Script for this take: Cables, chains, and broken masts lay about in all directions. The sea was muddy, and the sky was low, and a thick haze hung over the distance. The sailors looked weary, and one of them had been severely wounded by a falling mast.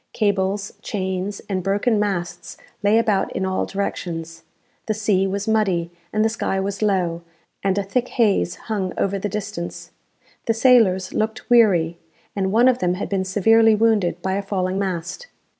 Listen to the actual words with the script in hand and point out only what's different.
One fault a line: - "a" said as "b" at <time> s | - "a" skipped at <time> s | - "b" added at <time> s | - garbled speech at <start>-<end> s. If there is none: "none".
none